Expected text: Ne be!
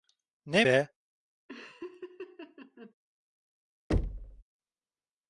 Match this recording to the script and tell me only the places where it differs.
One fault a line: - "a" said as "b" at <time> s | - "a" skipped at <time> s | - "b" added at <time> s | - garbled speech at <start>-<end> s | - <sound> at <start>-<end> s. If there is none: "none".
- laugh at 1.5-2.9 s
- thud at 3.9-4.4 s